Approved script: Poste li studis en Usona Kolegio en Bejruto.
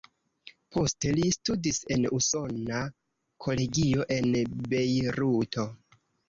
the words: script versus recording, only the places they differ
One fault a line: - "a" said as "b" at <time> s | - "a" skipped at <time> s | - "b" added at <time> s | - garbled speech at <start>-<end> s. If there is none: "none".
none